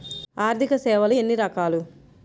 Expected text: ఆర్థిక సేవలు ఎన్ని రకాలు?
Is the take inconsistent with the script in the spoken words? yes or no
no